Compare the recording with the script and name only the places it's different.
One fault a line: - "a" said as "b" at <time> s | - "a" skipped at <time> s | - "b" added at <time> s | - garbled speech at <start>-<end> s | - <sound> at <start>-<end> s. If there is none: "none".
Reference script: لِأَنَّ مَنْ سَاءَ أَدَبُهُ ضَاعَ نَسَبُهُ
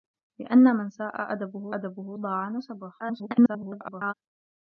- "أَدَبُهُ" added at 1.8 s
- garbled speech at 3.0-4.1 s